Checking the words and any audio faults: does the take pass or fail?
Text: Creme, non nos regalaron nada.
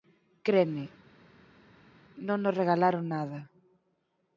pass